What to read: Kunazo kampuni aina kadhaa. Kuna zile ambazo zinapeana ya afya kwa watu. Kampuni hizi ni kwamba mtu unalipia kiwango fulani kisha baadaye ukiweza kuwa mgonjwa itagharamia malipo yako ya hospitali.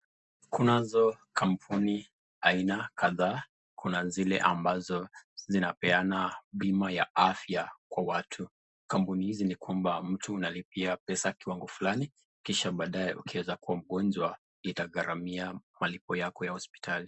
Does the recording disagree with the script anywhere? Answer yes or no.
yes